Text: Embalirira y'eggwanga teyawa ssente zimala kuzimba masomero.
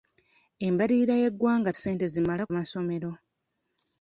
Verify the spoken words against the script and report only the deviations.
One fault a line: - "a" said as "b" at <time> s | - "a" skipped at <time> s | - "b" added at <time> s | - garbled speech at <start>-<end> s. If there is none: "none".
- "teyawa" skipped at 1.7 s
- "kuzimba" skipped at 2.4 s